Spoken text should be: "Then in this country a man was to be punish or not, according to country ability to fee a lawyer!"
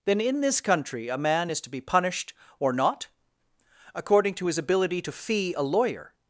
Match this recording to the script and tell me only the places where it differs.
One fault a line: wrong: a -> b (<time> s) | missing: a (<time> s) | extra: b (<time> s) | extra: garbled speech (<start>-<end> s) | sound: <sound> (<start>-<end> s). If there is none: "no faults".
wrong: was -> is (1.5 s)
wrong: punish -> punished (1.8 s)
wrong: country -> his (4.5 s)